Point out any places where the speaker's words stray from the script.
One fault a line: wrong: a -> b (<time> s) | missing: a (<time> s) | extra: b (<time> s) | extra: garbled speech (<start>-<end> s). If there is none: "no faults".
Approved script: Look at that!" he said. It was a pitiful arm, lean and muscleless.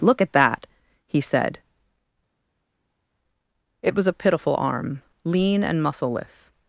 no faults